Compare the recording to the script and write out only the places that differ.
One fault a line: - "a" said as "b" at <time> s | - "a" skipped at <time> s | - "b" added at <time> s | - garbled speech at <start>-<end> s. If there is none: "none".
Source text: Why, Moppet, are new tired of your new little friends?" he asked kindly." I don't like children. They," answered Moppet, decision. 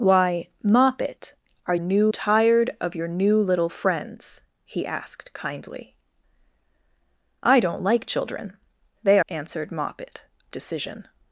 none